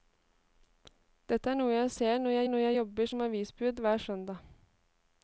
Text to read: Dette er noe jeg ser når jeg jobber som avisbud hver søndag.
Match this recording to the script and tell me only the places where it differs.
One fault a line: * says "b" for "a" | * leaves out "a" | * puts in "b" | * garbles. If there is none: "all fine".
* puts in "når jeg"